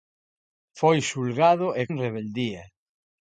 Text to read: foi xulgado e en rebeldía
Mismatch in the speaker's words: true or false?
false